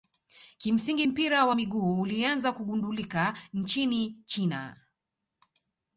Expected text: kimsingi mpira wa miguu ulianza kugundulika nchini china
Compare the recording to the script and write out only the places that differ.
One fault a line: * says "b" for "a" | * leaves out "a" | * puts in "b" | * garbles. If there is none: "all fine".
all fine